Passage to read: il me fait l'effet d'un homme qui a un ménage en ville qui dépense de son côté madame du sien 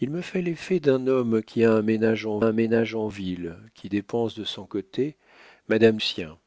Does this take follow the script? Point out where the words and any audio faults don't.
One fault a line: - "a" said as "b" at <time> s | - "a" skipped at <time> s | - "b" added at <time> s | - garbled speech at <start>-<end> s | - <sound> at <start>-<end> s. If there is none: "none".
- "un ménage en" added at 2.4 s
- "du" skipped at 6.0 s